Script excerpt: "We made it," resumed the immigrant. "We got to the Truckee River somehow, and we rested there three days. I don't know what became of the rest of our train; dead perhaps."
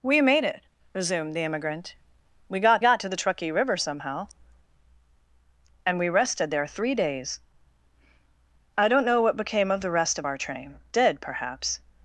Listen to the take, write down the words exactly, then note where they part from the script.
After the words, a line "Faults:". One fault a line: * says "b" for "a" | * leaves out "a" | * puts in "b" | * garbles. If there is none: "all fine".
"We made it," resumed the immigrant. "We got got to the Truckee River somehow, and we rested there three days. I don't know what became of the rest of our train; dead perhaps."
Faults:
* puts in "got"